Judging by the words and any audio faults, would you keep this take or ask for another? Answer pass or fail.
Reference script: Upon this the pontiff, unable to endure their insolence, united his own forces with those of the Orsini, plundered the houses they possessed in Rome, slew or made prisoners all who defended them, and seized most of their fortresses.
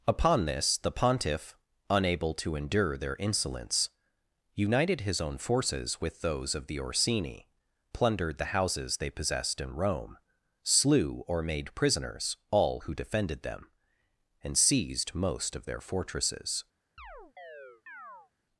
fail